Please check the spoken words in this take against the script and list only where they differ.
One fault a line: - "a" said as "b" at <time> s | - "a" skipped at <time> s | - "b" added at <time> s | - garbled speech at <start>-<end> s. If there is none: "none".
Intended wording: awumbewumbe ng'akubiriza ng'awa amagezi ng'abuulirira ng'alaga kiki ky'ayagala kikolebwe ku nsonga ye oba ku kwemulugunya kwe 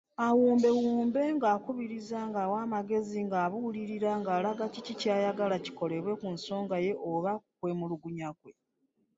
none